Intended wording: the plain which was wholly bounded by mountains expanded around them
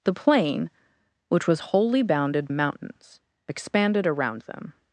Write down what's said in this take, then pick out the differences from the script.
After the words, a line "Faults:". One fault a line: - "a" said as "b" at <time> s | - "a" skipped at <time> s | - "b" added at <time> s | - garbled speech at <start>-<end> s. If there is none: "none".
the plain which was wholly bounded mountains expanded around them
Faults:
- "by" skipped at 2.5 s